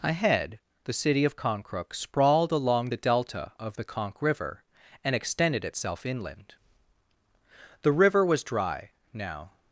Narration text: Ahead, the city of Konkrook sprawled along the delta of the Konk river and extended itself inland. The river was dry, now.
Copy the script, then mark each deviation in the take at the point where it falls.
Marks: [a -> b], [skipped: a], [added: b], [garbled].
Ahead, the city of Konkrook sprawled along the delta of the Konk river and extended itself inland. The river was dry, now.